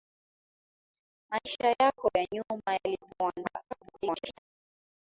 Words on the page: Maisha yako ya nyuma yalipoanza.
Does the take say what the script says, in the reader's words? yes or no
no